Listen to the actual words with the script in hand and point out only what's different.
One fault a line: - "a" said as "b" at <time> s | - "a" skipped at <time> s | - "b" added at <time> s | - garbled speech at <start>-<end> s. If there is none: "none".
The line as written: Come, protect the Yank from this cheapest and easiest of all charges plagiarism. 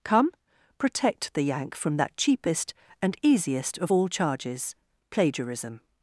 - "this" said as "that" at 2.0 s